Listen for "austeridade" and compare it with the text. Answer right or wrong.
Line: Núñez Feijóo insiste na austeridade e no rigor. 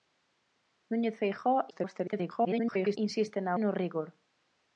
wrong